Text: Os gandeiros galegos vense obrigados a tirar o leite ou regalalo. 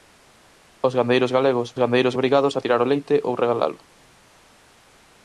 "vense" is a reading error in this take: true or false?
true